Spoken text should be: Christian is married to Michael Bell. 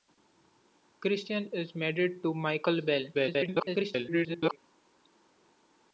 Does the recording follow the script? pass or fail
fail